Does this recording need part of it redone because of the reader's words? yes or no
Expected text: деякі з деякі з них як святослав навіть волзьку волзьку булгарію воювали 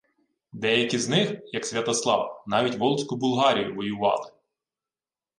yes